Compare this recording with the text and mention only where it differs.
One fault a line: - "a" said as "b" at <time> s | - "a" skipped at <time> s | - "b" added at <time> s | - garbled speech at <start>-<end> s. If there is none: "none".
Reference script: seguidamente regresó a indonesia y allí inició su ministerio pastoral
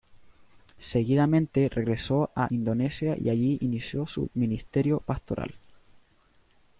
none